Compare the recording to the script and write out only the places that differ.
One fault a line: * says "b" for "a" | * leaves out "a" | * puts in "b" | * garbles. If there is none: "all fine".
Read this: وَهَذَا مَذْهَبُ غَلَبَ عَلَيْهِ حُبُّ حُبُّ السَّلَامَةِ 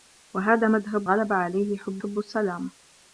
all fine